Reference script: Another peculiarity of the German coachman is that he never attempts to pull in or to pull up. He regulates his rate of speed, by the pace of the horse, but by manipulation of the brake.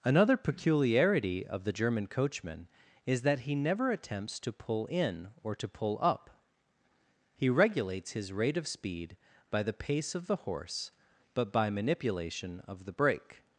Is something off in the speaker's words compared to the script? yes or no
no